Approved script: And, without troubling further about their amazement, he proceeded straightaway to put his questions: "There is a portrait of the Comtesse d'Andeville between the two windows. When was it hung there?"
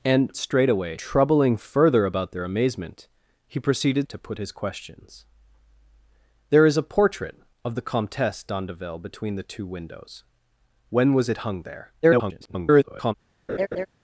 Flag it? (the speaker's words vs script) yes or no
yes